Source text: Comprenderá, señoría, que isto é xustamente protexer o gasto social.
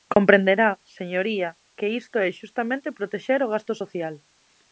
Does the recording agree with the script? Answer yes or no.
yes